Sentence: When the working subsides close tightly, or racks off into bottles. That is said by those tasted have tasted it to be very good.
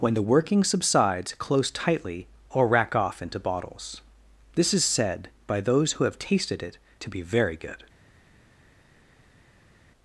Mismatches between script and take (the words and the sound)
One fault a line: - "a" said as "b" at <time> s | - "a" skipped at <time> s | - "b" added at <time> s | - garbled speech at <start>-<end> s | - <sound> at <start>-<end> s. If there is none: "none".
- "racks" said as "rack" at 2.7 s
- "That" said as "This" at 4.5 s
- "tasted" said as "who" at 5.9 s